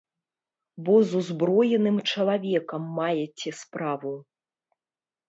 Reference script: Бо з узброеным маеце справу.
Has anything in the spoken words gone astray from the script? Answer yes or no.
yes